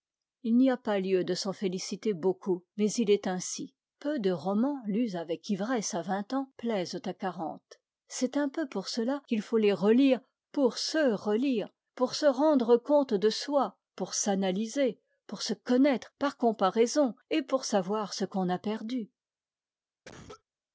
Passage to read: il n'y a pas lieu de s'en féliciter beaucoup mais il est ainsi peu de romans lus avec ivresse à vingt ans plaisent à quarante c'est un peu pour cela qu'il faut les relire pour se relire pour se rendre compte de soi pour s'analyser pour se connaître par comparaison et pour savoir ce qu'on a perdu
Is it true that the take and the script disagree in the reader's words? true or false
false